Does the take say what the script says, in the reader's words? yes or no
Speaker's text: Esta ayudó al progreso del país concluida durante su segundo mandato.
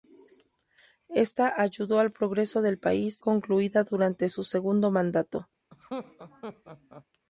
yes